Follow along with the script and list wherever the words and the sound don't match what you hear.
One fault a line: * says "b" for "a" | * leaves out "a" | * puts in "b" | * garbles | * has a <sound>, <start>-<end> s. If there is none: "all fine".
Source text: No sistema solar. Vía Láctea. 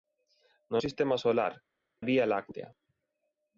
all fine